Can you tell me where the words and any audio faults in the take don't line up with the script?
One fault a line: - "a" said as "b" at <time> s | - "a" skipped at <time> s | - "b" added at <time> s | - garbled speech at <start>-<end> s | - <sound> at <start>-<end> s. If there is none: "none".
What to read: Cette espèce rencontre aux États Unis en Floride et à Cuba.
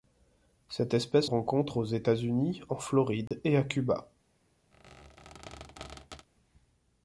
- dropout at 3.3-3.3 s
- squeak at 4.7-6.3 s